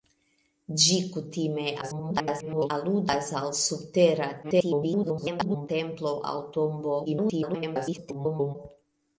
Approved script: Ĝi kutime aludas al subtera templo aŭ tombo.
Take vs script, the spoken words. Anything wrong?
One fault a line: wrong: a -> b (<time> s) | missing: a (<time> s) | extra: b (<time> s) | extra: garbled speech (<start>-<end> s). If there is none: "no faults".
extra: garbled speech (1.8-2.7 s)
extra: garbled speech (4.4-5.7 s)
extra: garbled speech (7.1-8.6 s)